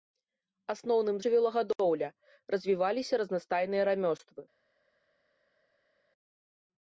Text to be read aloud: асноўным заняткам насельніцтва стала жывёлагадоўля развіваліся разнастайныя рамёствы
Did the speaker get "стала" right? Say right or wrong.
wrong